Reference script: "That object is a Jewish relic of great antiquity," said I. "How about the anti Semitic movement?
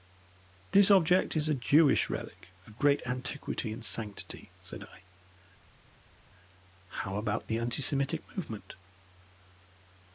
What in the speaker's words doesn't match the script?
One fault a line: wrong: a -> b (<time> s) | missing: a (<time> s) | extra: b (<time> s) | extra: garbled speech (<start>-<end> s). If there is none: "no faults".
wrong: That -> This (0.7 s)
extra: and sanctity (3.7 s)